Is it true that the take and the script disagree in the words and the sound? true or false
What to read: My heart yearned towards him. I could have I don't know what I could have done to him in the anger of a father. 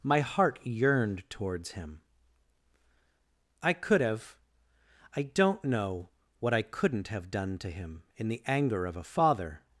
true